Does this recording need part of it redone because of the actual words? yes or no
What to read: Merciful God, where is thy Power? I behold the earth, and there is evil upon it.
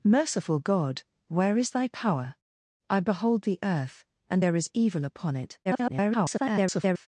yes